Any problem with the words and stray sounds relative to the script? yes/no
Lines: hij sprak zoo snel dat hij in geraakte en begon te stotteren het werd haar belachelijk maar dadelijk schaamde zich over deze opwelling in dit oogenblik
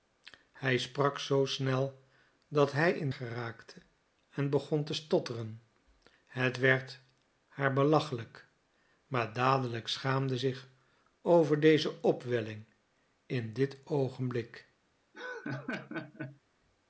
yes